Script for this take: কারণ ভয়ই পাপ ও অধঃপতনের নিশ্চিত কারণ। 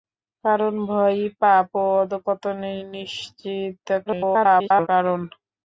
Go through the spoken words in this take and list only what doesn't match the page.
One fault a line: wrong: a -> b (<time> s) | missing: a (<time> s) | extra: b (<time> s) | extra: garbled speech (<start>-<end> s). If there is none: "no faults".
extra: garbled speech (4.1-4.9 s)